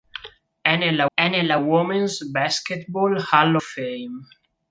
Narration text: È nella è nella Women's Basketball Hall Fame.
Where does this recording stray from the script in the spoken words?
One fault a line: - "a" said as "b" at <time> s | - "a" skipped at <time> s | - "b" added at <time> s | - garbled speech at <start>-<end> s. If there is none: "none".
none